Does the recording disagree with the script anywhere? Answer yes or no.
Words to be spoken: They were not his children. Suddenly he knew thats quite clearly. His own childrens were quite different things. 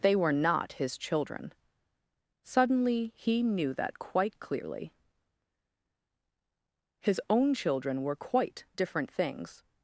yes